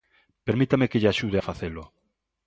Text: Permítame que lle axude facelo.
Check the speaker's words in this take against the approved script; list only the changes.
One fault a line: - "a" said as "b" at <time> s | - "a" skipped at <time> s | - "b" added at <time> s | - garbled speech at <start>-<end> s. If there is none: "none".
- "a" added at 1.3 s